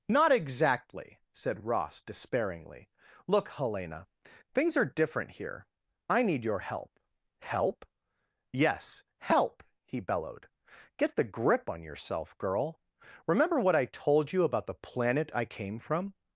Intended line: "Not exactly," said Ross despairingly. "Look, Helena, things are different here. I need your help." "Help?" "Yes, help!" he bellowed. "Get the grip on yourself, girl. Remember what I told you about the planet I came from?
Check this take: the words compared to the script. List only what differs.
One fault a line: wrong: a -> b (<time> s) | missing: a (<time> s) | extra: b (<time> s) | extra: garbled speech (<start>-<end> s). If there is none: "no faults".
no faults